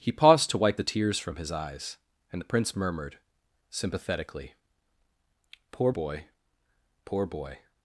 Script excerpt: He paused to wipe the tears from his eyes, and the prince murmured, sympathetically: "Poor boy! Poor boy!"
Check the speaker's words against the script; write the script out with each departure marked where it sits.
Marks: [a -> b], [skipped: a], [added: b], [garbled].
He paused to wipe the tears from his eyes, and the prince murmured, sympathetically: "Poor boy! Poor boy!"